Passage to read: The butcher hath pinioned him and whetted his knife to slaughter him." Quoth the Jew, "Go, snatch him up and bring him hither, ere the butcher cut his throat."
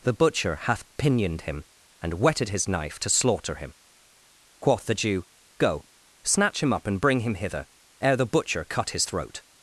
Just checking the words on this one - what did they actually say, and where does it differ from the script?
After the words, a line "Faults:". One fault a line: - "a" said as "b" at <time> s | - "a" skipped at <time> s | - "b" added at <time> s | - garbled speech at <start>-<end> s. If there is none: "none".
The butcher hath pinioned him and whetted his knife to slaughter him." Quoth the Jew, "Go, snatch him up and bring him hither, ere the butcher cut his throat."
Faults:
none